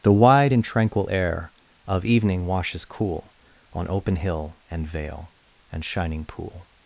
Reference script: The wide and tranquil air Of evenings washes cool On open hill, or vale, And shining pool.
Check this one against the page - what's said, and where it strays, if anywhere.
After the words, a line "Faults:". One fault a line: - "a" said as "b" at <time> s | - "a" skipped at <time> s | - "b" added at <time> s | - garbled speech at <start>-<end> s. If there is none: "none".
The wide and tranquil air Of evening washes cool On open hill, and vale, And shining pool.
Faults:
- "evenings" said as "evening" at 2.0 s
- "or" said as "and" at 4.7 s